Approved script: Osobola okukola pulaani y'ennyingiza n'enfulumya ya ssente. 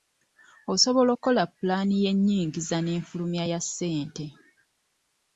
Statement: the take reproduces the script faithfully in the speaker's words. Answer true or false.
true